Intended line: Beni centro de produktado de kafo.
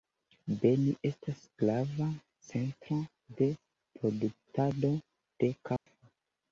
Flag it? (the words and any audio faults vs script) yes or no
yes